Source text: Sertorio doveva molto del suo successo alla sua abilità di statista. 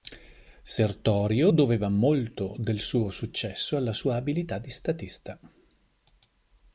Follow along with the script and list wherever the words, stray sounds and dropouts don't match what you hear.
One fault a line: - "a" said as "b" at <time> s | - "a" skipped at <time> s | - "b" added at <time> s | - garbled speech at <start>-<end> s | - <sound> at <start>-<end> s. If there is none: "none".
none